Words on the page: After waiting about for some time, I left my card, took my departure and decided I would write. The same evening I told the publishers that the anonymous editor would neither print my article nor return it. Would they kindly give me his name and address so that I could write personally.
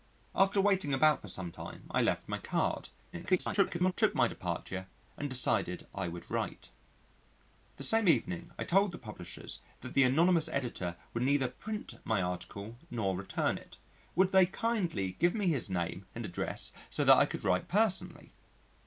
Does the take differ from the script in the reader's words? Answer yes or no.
yes